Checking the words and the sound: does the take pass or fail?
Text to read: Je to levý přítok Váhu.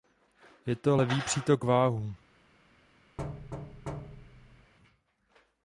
fail